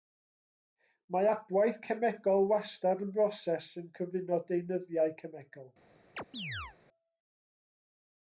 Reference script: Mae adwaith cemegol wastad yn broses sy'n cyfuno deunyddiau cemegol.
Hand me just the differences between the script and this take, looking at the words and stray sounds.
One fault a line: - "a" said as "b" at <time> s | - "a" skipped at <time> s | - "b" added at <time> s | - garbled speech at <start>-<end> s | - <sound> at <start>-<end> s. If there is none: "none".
- chirp at 6.2-6.8 s